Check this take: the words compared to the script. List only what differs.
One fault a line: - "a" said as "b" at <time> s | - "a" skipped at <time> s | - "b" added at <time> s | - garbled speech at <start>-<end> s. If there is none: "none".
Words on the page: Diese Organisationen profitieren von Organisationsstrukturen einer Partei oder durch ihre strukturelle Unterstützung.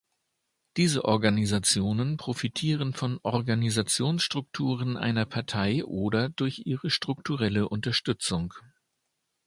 none